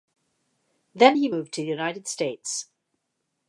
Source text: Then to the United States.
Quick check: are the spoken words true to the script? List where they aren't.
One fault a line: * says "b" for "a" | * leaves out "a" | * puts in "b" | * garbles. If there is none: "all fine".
* puts in "he moved"